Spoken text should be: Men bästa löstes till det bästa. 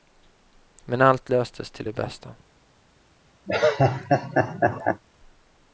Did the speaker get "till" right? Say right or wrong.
right